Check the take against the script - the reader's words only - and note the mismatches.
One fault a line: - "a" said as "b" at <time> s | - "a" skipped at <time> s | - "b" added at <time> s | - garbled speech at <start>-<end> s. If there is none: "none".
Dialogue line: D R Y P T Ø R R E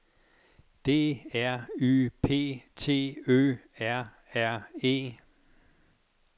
none